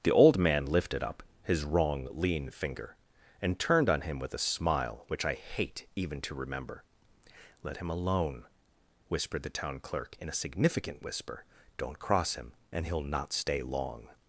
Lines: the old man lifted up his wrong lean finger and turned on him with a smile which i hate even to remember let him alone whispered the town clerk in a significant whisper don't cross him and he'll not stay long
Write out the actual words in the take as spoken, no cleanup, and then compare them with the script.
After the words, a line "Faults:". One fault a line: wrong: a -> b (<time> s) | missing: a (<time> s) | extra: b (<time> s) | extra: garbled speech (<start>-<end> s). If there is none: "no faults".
the old man lifted up his wrong lean finger and turned on him with a smile which i hate even to remember let him alone whispered the town clerk in a significant whisper don't cross him and he'll not stay long
Faults:
no faults